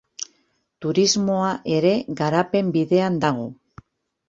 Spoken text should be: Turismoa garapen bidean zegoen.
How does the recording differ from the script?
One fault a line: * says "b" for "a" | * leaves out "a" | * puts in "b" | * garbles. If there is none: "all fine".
* puts in "ere"
* says "dago" for "zegoen"